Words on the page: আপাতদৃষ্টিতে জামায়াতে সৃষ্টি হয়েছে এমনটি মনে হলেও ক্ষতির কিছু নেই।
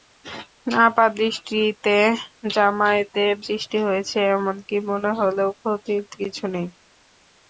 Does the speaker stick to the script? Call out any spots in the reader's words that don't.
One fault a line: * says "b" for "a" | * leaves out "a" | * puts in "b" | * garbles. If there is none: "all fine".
all fine